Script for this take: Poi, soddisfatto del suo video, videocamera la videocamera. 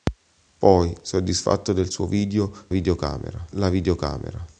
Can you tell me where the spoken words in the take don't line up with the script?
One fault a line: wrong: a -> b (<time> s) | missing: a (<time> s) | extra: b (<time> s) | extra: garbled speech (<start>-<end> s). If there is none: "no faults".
no faults